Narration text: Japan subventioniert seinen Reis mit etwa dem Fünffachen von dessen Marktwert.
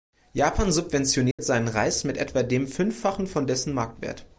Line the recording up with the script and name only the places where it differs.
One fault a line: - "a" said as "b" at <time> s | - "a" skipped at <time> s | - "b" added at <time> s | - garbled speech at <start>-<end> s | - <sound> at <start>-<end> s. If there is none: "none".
- dropout at 1.3-1.4 s